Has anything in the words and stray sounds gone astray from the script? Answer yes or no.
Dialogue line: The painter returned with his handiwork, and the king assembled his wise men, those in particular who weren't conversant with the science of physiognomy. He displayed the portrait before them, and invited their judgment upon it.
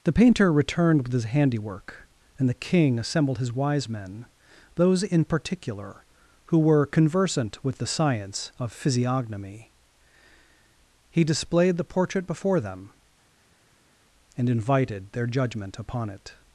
yes